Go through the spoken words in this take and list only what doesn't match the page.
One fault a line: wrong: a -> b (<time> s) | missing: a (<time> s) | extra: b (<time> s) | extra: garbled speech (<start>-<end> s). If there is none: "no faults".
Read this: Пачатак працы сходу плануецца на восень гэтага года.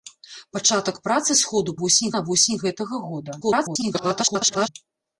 wrong: плануецца -> восень (1.8 s)
extra: garbled speech (3.4-4.7 s)